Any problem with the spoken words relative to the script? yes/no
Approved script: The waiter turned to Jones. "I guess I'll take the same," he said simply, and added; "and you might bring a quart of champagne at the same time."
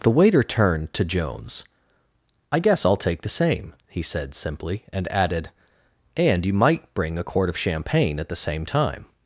no